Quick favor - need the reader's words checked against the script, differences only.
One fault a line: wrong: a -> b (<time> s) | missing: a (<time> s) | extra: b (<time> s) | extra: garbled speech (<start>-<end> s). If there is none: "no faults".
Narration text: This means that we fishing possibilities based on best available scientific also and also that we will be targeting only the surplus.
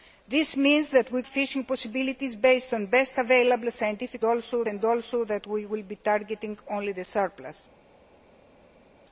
no faults